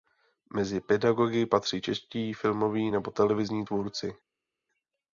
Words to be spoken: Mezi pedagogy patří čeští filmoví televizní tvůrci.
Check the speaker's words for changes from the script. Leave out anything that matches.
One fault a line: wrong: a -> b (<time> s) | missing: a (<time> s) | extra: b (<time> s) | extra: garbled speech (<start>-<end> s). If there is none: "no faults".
extra: nebo (2.9 s)